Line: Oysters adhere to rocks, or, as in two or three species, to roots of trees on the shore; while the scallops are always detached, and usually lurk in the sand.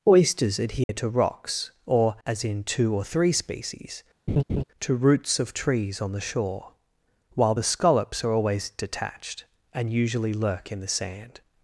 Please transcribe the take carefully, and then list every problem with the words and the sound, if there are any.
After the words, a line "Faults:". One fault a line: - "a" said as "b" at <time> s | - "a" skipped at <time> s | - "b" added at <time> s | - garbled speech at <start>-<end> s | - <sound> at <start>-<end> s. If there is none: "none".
Oysters adhere to rocks, or, as in two or three species, to roots of trees on the shore; while the scallops are always detached, and usually lurk in the sand.
Faults:
- dropout at 0.8-0.9 s
- laugh at 4.3-4.6 s